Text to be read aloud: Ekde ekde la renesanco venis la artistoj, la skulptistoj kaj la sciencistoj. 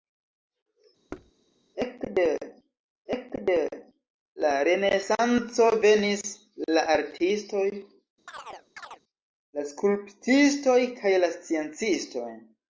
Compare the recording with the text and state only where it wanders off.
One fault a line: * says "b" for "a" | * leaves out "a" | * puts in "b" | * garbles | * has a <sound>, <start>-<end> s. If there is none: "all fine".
* has a thud, 1.1-1.3 s
* has a chirp, 8.3-9.0 s